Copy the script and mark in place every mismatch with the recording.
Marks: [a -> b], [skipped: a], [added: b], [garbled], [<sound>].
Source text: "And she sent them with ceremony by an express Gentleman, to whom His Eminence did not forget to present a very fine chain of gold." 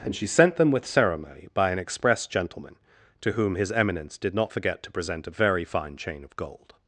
"And she sent them with ceremony by an express Gentleman, to whom His Eminence did not forget to present a very fine chain of gold."